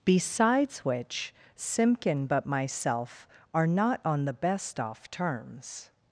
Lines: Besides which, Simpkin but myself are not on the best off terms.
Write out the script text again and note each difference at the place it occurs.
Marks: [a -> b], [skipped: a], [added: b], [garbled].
Besides which, Simpkin but myself are not on the best off terms.